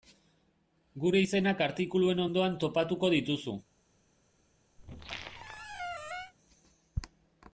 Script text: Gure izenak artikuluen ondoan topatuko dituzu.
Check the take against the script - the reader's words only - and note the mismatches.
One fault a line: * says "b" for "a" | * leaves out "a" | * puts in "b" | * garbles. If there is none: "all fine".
all fine